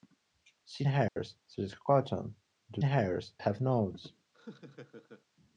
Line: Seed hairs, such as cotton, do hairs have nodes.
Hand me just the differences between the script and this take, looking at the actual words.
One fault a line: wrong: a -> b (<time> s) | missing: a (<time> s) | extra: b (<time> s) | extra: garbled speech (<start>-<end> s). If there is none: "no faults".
no faults